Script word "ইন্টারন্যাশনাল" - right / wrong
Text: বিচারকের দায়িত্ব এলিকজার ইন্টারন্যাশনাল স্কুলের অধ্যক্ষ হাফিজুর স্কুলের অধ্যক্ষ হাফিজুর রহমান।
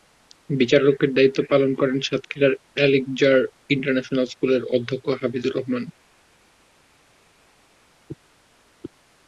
wrong